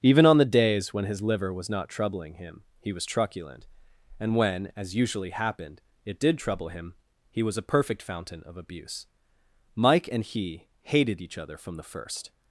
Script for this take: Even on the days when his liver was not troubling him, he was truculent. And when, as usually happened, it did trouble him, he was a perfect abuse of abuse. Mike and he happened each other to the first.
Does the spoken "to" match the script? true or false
false